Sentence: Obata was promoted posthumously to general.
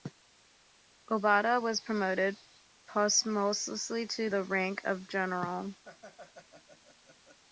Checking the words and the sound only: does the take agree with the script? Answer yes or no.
no